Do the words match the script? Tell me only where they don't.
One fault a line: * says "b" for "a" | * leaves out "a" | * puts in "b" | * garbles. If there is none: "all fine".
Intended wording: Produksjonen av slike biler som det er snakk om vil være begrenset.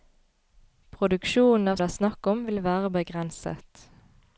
* leaves out "slike biler som"